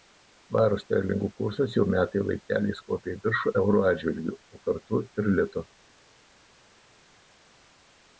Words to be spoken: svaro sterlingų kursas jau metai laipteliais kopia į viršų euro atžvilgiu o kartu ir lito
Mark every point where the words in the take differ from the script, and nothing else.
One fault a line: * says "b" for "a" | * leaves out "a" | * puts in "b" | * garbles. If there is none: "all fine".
all fine